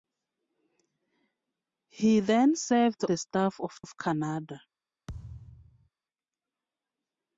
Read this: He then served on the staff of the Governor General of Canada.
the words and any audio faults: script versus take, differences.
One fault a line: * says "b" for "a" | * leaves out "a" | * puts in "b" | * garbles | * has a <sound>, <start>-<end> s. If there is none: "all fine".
* leaves out "on"
* leaves out "the Governor General"
* has a thud, 5.1-5.9 s